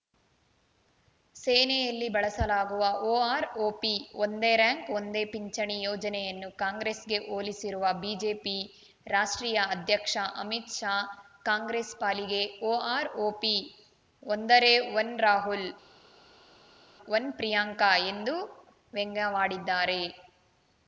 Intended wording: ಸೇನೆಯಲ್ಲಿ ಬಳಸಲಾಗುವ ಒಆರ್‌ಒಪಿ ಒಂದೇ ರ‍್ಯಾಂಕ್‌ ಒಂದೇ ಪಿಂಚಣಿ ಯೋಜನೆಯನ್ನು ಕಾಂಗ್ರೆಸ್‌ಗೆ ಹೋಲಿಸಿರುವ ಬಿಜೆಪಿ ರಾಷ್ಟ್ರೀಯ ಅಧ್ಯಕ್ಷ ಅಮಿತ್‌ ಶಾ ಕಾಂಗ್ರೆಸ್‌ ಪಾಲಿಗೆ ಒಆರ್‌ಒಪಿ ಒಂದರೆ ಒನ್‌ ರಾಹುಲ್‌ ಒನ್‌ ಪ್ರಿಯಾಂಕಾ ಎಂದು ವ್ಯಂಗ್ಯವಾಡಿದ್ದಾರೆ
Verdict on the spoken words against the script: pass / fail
pass